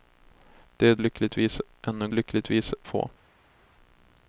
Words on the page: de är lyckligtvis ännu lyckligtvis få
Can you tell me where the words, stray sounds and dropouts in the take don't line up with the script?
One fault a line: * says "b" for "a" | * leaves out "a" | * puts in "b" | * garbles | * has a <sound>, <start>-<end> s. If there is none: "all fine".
all fine